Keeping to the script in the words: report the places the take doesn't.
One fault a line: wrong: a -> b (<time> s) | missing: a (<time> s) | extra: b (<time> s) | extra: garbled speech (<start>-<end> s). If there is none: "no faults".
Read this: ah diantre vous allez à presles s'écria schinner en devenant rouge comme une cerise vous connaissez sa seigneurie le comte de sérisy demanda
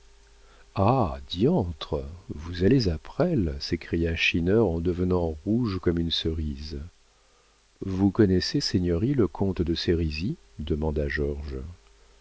missing: sa (8.6 s)